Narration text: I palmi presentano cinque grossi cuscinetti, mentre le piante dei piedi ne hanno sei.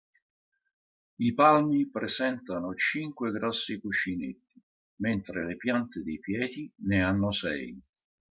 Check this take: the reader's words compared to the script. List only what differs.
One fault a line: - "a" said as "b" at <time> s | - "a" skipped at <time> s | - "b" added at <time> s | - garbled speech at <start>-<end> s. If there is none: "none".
none